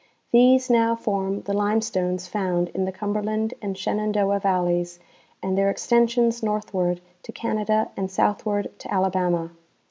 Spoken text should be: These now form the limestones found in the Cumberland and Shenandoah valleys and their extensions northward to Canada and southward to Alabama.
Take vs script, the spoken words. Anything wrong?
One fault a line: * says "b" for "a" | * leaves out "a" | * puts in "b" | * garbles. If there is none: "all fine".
all fine